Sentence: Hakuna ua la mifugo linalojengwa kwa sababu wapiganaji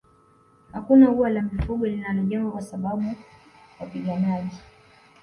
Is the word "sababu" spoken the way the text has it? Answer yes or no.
yes